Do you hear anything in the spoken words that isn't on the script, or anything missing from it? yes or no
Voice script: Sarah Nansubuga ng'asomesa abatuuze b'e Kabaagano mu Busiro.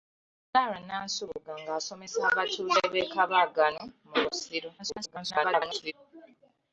yes